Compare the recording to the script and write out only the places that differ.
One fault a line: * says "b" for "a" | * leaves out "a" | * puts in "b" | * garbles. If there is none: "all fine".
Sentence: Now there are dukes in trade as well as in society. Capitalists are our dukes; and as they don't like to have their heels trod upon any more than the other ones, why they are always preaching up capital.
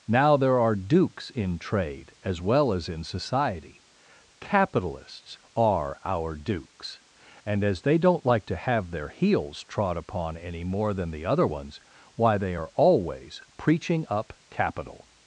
all fine